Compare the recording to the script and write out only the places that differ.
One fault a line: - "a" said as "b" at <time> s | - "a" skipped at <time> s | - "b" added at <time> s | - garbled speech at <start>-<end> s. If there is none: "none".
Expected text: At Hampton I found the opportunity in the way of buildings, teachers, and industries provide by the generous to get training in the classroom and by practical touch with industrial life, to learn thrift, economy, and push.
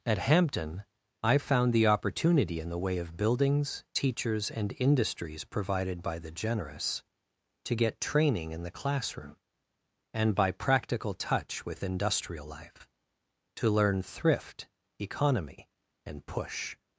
- "provide" said as "provided" at 5.4 s